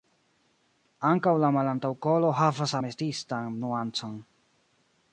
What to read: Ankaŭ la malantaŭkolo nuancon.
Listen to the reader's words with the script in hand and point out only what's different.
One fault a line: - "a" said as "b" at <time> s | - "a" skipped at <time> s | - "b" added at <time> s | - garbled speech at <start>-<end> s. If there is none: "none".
- "havas ametistan" added at 2.4 s